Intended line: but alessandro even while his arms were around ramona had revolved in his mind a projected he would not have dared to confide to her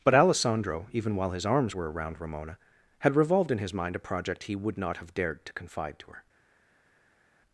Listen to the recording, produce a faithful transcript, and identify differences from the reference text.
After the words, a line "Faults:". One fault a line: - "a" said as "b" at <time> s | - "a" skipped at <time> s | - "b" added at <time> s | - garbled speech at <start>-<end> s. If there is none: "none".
but alessandro even while his arms were around ramona had revolved in his mind a project he would not have dared to confide to her
Faults:
- "projected" said as "project" at 4.0 s